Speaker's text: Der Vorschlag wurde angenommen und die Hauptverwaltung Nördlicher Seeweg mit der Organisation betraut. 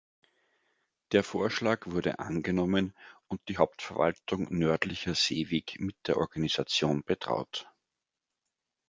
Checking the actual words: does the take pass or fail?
pass